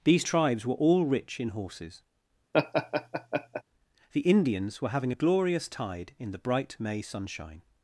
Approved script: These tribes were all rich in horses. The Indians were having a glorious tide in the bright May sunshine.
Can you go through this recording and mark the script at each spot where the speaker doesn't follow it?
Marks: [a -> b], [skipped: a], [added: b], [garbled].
These tribes were all rich in horses. The Indians were having a glorious tide in the bright May sunshine.